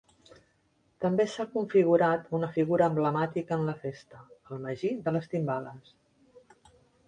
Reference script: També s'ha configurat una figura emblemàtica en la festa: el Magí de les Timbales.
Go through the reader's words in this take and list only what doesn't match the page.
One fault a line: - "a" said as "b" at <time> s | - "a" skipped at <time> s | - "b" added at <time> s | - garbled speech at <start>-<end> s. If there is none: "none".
none